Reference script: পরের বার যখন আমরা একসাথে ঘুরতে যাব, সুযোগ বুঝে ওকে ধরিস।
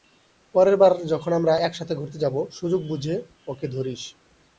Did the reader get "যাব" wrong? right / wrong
right